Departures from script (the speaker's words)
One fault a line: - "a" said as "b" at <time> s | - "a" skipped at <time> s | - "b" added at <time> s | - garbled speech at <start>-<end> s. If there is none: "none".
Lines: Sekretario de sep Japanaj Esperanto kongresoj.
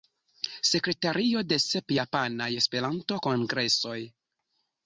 none